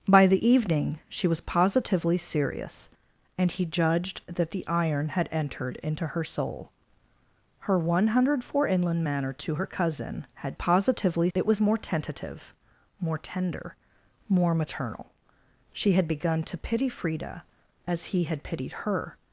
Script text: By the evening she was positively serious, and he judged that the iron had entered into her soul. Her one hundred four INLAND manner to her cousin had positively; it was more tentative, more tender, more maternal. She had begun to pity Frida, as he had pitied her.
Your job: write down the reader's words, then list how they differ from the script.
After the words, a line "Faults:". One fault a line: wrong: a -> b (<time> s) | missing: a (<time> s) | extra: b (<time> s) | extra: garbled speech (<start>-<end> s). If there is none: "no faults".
By the evening she was positively serious, and he judged that the iron had entered into her soul. Her one hundred four INLAND manner to her cousin had positively; it was more tentative, more tender, more maternal. She had begun to pity Frida, as he had pitied her.
Faults:
no faults